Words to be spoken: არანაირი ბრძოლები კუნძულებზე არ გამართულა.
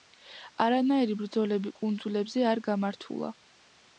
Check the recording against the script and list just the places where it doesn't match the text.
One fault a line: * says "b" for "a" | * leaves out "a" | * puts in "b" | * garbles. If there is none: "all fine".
all fine